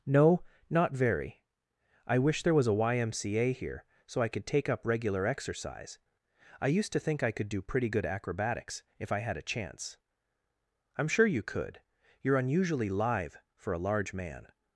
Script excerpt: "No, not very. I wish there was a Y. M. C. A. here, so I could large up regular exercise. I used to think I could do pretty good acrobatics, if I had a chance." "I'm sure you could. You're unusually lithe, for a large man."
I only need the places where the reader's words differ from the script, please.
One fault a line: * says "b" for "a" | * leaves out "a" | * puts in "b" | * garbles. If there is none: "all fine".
* says "take" for "large"